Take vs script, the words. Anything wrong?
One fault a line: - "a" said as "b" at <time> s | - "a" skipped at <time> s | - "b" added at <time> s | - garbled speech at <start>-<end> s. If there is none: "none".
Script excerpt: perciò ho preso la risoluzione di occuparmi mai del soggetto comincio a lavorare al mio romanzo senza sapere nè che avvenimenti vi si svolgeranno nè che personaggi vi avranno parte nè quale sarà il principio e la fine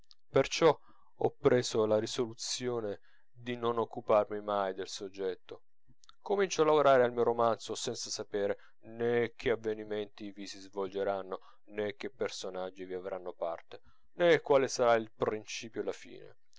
- "non" added at 3.5 s